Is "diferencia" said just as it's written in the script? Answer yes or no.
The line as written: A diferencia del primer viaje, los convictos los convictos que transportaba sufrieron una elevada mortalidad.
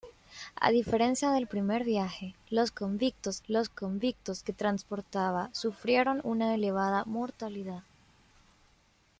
yes